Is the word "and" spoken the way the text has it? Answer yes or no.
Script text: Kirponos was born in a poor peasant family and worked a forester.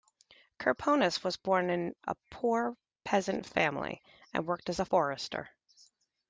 yes